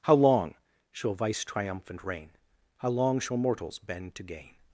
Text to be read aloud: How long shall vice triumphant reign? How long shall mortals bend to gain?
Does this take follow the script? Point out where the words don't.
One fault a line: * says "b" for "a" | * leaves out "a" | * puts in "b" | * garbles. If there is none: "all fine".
all fine